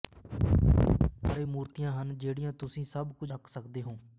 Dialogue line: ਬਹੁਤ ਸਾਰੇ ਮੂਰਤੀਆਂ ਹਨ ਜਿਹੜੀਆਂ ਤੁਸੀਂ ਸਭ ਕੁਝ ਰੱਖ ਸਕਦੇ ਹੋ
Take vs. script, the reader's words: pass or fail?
pass